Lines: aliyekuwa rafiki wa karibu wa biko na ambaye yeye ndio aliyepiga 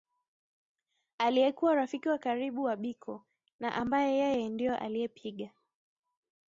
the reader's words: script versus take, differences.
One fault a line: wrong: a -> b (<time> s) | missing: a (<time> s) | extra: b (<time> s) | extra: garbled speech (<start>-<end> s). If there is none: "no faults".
no faults